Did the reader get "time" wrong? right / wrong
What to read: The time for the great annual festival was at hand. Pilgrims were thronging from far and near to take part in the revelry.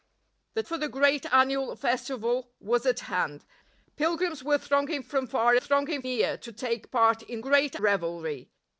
wrong